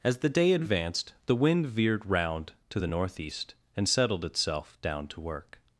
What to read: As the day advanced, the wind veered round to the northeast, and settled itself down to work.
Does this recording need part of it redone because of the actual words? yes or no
no